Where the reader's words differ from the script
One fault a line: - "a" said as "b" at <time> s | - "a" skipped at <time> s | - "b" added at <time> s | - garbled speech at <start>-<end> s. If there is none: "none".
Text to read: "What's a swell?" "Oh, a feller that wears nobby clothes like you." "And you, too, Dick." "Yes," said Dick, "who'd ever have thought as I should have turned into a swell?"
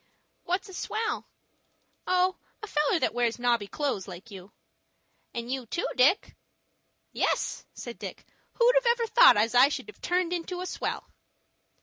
none